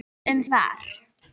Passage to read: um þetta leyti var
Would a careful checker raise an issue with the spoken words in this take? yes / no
yes